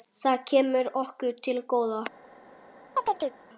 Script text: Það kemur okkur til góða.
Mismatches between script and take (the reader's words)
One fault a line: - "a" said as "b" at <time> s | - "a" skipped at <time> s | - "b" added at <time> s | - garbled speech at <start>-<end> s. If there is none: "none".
none